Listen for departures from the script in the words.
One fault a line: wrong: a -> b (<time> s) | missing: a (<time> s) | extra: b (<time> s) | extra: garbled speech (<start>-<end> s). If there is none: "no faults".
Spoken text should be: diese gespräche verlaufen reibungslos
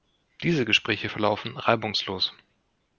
no faults